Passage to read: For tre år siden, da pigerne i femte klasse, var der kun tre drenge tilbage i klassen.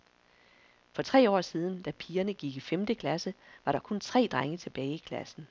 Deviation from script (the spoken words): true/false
true